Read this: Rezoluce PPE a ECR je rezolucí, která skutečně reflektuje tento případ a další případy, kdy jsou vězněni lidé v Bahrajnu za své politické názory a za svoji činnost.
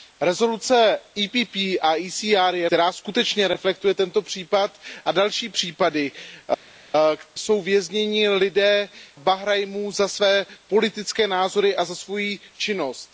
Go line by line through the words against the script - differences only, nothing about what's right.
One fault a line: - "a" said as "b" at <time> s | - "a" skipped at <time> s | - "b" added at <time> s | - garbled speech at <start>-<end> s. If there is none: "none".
- "rezolucí" skipped at 2.7 s
- "kdy" skipped at 6.1 s
- "v" skipped at 8.9 s